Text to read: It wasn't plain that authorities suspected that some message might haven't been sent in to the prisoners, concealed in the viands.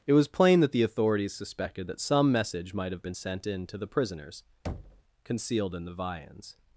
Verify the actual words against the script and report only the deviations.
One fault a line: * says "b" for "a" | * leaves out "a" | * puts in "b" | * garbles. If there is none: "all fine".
* says "was" for "wasn't"
* puts in "the"
* says "have" for "haven't"